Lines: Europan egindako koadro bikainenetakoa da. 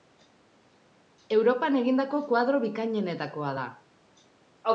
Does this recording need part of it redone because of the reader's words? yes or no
no